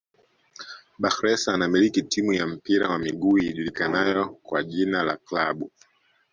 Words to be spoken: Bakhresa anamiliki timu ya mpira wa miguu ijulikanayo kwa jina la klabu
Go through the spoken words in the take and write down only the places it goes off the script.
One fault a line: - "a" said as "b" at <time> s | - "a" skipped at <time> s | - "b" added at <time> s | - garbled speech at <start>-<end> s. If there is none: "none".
none